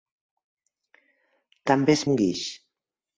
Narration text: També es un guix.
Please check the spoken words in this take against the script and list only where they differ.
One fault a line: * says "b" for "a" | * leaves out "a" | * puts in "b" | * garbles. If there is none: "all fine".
all fine